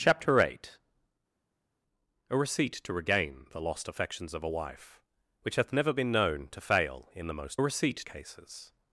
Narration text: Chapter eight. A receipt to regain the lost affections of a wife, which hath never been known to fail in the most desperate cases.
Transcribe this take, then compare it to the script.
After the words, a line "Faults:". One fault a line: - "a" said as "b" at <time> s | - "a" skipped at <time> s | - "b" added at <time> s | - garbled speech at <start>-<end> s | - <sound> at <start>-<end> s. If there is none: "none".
Chapter eight. A receipt to regain the lost affections of a wife, which hath never been known to fail in the most receipt cases.
Faults:
- "desperate" said as "receipt" at 7.6 s